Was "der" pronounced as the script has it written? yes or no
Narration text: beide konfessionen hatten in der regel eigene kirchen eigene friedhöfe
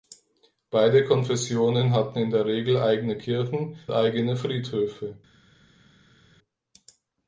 yes